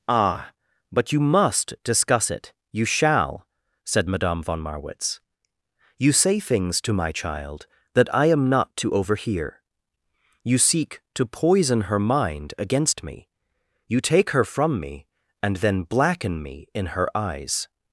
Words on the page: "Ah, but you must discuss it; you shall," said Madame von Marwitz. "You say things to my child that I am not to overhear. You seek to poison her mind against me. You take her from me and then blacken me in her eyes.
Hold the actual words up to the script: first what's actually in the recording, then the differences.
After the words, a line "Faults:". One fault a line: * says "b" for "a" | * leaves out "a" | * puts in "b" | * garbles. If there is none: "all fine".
"Ah, but you must discuss it; you shall," said Madame von Marwitz. "You say things to my child that I am not to overhear. You seek to poison her mind against me. You take her from me and then blacken me in her eyes.
Faults:
all fine